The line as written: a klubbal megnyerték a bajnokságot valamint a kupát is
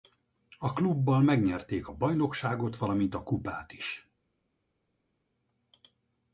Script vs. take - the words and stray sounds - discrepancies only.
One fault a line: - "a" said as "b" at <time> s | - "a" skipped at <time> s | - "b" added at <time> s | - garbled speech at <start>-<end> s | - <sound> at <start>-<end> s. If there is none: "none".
none